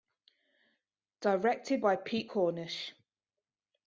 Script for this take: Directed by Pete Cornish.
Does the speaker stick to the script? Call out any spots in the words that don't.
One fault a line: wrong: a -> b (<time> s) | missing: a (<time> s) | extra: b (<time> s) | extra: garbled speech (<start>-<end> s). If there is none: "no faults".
no faults